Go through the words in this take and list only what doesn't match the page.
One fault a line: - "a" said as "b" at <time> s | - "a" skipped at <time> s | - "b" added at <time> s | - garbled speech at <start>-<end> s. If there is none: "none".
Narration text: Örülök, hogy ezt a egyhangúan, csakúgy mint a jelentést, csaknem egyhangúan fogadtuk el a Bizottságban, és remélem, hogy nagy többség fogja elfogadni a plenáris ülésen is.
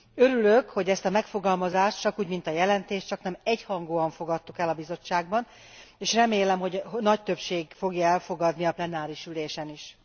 - "egyhangúan" said as "megfogalmazást" at 1.1 s